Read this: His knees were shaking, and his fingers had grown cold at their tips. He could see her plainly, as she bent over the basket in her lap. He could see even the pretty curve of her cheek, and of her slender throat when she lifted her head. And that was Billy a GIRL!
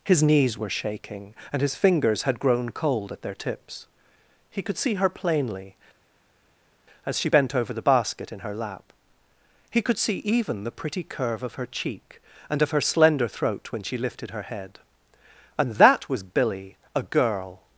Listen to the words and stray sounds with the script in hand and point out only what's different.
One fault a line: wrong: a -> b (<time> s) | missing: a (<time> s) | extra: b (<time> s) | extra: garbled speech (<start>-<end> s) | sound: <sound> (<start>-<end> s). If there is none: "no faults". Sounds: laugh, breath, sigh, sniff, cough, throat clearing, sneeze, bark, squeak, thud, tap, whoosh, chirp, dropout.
no faults